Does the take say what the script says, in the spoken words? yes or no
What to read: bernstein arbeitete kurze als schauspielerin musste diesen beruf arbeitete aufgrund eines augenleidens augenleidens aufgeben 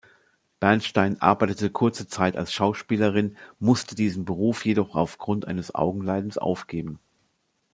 no